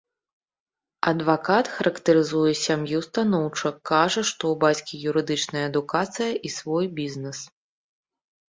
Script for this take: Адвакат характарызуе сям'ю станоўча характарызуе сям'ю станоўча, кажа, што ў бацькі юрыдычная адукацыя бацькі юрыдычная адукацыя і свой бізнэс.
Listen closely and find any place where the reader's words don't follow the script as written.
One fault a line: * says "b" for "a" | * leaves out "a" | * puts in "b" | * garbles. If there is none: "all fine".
* leaves out "характарызуе сям'ю станоўча"
* leaves out "бацькі юрыдычная адукацыя"